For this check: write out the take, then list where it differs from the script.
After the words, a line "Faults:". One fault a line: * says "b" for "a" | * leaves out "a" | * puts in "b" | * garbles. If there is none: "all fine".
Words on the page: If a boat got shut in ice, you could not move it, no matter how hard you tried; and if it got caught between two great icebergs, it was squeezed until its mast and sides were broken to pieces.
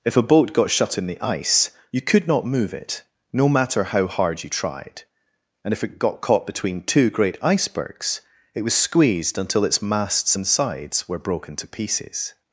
If a boat got shut in the ice, you could not move it, no matter how hard you tried; and if it got caught between two great icebergs, it was squeezed until its masts and sides were broken to pieces.
Faults:
* puts in "the"
* says "masts" for "mast"